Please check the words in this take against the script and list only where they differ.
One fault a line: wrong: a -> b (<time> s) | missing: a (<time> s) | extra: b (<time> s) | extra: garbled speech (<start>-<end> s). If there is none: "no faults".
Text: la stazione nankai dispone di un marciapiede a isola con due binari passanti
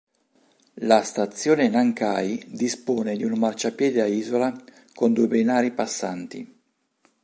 no faults